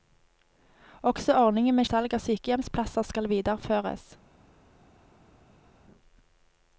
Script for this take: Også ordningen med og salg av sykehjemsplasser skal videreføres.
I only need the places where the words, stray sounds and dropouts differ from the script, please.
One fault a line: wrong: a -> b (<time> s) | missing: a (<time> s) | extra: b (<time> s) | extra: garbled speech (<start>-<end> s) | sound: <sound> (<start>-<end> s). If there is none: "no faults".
no faults